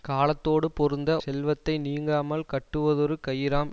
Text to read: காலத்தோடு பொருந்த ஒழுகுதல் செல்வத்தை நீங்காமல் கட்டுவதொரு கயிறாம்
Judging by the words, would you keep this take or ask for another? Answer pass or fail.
fail